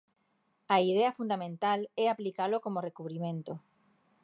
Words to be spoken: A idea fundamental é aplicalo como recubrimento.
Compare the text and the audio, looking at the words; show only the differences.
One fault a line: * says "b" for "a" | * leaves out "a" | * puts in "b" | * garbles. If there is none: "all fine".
all fine